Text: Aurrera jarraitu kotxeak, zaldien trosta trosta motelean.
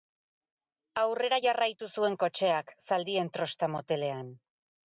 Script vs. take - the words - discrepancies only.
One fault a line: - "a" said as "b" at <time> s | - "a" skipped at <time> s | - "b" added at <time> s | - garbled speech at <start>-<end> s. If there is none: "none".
- "zuen" added at 1.9 s
- "trosta" skipped at 3.7 s